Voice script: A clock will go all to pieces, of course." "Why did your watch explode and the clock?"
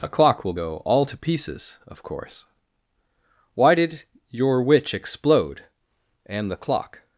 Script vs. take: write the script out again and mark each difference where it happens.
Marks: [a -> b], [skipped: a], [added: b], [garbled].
A clock will go all to pieces, of course." "Why did your [watch -> witch] explode and the clock?"